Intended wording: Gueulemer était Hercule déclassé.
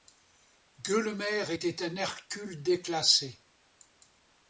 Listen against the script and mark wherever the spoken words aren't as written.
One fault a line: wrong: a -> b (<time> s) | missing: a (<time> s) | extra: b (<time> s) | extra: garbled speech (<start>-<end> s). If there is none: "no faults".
extra: un (1.8 s)